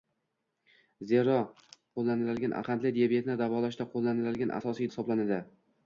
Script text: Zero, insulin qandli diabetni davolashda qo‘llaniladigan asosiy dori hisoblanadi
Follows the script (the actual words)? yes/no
no